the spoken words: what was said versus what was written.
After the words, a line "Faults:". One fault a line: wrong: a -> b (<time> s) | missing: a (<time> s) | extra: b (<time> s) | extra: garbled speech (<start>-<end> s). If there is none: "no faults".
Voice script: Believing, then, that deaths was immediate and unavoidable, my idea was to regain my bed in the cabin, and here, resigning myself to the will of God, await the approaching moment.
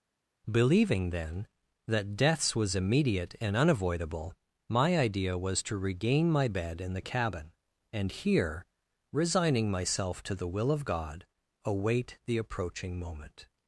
Believing, then, that deaths was immediate and unavoidable, my idea was to regain my bed in the cabin, and here, resigning myself to the will of God, await the approaching moment.
Faults:
no faults